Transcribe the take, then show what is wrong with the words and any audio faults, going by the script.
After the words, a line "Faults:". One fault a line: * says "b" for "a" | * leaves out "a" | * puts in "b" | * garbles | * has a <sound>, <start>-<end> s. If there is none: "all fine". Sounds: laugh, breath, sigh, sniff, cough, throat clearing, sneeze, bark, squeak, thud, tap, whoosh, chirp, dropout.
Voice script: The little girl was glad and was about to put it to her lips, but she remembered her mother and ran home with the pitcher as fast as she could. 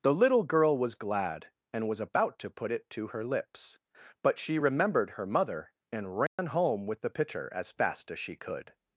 The little girl was glad and was about to put it to her lips, but she remembered her mother and ran home with the pitcher as fast as she could.
Faults:
* has a dropout, 6.3-6.4 s